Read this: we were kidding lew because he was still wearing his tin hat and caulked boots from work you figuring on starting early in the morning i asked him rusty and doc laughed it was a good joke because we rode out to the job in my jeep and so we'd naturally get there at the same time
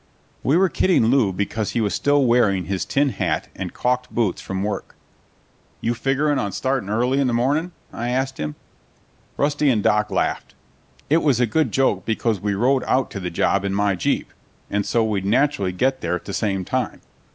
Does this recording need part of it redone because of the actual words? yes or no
no